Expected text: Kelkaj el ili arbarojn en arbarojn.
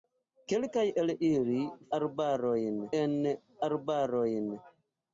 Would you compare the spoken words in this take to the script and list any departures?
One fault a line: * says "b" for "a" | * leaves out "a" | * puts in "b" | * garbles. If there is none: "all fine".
all fine